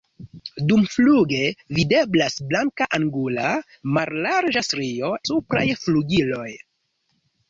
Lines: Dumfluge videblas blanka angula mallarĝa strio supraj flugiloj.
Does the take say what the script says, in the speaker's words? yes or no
yes